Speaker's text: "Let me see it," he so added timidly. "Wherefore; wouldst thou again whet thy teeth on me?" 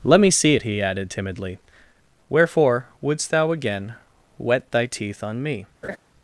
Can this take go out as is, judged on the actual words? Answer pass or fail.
fail